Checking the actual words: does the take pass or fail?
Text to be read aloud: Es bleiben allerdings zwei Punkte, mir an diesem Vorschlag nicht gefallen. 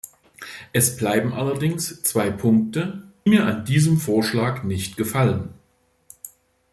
pass